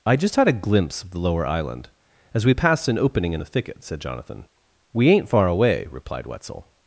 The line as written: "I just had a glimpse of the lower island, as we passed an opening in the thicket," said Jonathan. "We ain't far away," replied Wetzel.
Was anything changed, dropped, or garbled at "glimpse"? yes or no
no